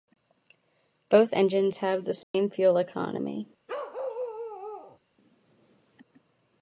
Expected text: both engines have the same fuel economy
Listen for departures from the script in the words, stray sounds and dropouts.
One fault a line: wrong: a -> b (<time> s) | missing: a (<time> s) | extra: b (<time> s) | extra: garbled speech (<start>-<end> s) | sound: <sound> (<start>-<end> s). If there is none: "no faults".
sound: dropout (2.2-2.3 s)
sound: bark (3.7-5.0 s)